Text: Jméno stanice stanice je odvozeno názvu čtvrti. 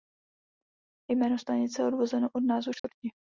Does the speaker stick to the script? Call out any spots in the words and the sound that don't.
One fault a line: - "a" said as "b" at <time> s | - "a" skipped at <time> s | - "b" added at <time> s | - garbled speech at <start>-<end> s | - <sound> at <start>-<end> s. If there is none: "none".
- "stanice" skipped at 1.8 s
- "od" added at 2.3 s
- dropout at 2.8-2.8 s